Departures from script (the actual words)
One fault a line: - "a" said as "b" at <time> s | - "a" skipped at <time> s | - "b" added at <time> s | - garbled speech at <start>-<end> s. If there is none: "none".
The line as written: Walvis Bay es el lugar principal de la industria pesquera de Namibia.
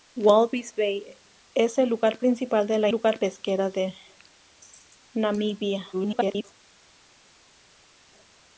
- "industria" said as "lugar" at 2.9 s
- garbled speech at 5.9-6.4 s